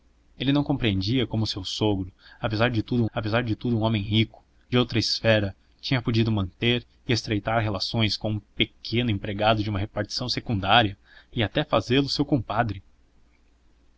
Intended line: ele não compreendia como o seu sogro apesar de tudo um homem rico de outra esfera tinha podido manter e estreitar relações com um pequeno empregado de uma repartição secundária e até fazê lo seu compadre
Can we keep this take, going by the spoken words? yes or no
no